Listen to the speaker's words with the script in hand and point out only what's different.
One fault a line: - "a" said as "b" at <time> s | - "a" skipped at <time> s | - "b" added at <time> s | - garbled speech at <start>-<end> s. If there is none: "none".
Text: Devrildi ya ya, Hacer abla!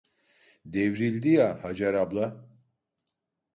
- "ya" skipped at 1.7 s